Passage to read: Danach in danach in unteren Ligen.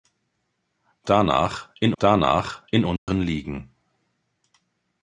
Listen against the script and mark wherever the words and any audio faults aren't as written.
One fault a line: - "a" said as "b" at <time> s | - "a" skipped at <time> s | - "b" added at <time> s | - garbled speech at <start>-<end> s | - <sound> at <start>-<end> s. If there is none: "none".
- dropout at 3.0-3.1 s